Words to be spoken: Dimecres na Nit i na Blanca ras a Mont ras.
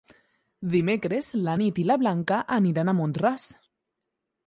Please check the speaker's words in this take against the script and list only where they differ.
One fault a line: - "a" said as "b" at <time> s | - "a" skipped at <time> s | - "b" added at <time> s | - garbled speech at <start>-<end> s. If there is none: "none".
- "ras" said as "aniran" at 2.6 s